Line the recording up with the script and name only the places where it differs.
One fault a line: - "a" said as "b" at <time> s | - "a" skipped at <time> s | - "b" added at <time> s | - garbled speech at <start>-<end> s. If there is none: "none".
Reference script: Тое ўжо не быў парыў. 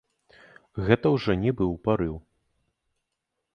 - "Тое" said as "Гэта" at 0.9 s